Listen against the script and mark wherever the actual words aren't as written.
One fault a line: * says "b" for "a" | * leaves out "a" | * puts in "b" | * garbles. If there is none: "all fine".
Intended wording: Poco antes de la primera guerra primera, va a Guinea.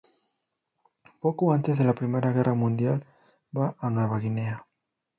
* says "mundial" for "primera"
* puts in "Nueva"